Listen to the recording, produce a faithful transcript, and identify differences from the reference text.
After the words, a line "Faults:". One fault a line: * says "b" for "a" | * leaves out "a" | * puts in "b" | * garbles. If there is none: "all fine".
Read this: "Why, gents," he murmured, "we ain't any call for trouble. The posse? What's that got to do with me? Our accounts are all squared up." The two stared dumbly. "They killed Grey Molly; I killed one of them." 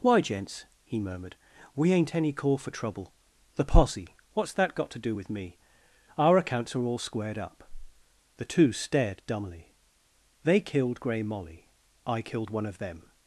"Why, gents," he murmured, "we ain't any call for trouble. The posse? What's that got to do with me? Our accounts are all squared up." The two stared dumbly. "They killed Grey Molly; I killed one of them."
Faults:
all fine